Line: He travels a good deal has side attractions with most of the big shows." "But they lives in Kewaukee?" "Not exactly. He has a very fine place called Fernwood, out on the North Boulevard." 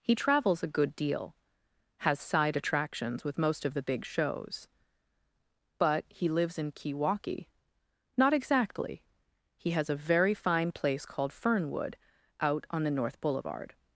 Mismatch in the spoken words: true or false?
true